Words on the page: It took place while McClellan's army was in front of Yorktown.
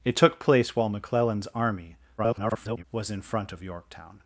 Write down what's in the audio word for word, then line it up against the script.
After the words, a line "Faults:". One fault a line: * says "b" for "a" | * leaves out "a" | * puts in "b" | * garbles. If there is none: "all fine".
It took place while McClellan's army [garbled] was in front of Yorktown.
Faults:
* garbles